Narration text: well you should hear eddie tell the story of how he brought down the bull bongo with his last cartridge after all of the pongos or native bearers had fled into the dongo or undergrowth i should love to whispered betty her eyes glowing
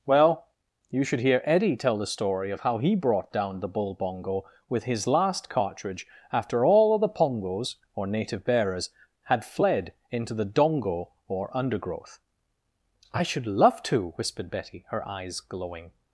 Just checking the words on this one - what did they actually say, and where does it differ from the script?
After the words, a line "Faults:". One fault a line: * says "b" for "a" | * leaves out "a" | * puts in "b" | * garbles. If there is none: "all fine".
well you should hear eddie tell the story of how he brought down the bull bongo with his last cartridge after all of the pongos or native bearers had fled into the dongo or undergrowth i should love to whispered betty her eyes glowing
Faults:
all fine